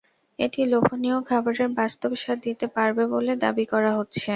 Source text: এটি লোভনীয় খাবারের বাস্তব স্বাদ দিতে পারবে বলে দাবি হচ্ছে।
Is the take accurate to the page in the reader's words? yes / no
no